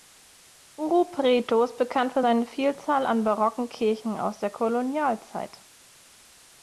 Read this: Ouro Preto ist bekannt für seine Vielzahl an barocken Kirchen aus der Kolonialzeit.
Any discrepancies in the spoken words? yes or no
no